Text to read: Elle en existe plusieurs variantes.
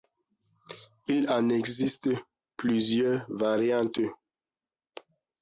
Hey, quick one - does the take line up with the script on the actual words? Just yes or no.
no